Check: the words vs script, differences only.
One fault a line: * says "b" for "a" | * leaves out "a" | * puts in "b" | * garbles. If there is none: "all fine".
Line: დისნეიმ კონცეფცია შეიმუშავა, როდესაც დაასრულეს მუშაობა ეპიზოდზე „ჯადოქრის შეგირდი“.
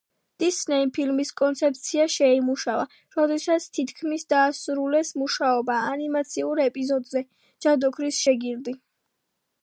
* puts in "ფილმის"
* puts in "თითქმის"
* puts in "ანიმაციურ"